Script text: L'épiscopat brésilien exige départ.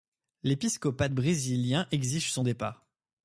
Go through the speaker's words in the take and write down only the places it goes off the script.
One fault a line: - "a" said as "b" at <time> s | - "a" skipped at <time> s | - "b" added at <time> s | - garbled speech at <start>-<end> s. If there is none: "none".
- "son" added at 2.3 s